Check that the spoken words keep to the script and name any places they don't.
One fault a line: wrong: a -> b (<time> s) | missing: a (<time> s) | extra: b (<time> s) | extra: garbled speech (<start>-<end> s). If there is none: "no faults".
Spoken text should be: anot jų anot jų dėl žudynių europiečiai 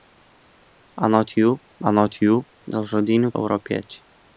no faults